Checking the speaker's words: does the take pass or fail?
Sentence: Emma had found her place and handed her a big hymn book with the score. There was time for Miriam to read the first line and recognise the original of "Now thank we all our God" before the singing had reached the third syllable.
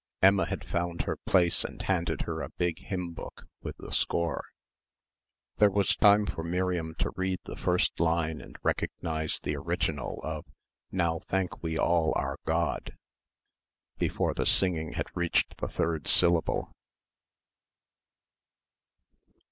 pass